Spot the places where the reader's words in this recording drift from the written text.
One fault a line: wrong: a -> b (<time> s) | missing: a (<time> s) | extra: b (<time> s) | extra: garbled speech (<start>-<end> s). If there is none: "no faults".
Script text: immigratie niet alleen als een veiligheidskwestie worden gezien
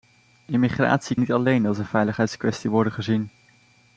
no faults